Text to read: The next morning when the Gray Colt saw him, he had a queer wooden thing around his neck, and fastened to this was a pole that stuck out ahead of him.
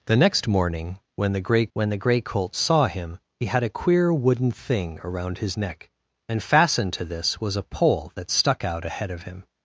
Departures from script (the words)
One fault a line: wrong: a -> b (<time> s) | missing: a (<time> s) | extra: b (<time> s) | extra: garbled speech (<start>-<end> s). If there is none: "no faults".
extra: when the Gray (1.7 s)